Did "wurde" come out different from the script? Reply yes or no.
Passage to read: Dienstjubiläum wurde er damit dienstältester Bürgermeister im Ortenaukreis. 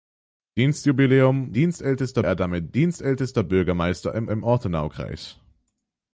yes